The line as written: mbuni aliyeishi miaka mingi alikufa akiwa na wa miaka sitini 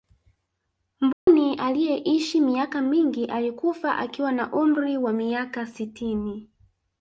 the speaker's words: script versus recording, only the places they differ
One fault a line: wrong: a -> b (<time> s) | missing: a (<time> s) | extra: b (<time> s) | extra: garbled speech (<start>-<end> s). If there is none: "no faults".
extra: umri (4.5 s)